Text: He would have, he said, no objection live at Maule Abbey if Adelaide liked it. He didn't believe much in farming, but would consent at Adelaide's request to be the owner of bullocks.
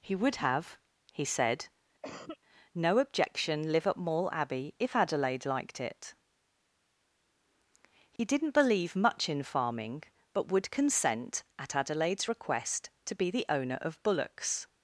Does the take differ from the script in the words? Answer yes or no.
no